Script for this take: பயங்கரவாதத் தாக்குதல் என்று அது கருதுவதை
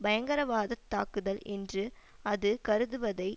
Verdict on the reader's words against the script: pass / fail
pass